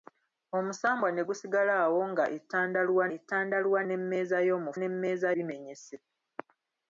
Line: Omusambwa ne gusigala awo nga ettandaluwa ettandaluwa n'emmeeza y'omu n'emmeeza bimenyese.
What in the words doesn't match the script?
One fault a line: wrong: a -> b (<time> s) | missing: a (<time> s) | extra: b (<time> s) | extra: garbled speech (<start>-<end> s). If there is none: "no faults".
no faults